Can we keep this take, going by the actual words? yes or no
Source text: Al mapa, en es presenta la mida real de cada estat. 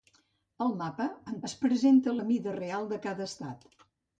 yes